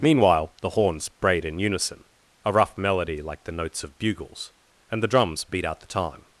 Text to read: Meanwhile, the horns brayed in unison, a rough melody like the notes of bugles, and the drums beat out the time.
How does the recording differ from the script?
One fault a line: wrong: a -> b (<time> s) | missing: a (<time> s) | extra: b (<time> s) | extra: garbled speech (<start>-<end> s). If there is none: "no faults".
no faults